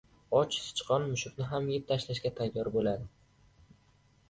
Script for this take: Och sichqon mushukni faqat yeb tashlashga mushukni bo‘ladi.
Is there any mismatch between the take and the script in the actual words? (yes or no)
yes